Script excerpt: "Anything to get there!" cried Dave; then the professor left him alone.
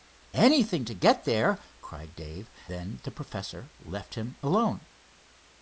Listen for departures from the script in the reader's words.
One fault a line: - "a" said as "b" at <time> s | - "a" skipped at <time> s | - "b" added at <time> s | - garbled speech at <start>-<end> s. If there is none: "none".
none